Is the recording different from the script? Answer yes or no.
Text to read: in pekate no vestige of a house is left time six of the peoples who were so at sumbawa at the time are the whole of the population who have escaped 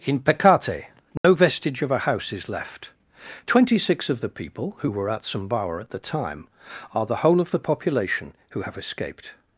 yes